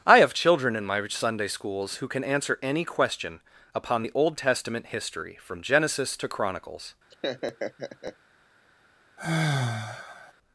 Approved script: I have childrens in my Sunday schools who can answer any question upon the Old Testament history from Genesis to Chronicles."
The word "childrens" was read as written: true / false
false